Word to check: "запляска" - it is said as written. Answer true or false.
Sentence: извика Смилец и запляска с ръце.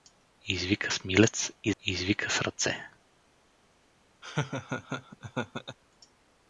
false